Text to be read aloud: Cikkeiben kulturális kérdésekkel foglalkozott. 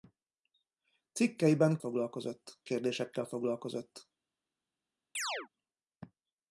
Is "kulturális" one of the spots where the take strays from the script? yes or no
yes